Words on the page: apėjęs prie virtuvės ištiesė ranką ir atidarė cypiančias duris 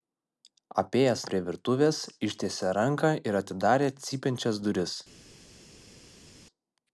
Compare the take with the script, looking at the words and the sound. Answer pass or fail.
pass